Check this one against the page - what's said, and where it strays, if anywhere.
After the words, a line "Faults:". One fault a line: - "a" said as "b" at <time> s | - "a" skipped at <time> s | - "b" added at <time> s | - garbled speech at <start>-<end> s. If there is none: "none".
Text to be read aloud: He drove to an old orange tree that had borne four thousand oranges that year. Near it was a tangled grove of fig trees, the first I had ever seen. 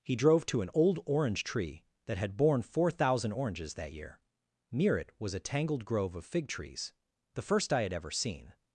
He drove to an old orange tree that had borne four thousand oranges that year. Near it was a tangled grove of fig trees, the first I had ever seen.
Faults:
none